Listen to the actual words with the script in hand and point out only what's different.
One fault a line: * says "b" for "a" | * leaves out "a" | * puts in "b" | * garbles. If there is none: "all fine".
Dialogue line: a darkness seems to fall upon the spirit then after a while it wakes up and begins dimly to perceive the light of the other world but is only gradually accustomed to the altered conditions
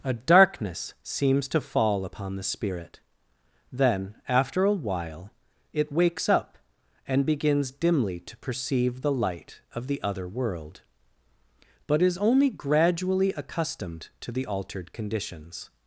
all fine